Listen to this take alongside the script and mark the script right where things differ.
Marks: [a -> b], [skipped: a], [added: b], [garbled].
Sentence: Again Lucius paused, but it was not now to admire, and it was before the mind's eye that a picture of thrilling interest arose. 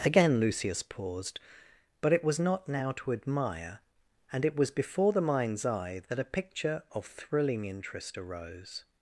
Again Lucius paused, but it was not now to admire, and it was before the mind's eye that a picture of thrilling interest arose.